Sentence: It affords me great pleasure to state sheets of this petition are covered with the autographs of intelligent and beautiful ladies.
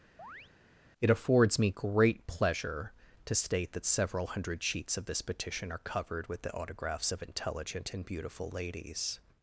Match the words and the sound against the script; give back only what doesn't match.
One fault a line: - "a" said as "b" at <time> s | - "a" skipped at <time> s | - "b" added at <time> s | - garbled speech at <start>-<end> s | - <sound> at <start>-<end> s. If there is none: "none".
- chirp at 0.2-0.5 s
- "that several hundred" added at 3.7 s